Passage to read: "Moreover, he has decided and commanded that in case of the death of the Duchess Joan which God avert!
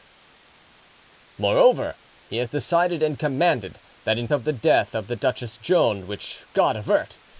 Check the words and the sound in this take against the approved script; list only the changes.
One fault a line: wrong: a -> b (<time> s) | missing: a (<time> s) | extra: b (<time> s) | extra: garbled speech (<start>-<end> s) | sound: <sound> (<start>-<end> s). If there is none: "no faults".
missing: case (4.3 s)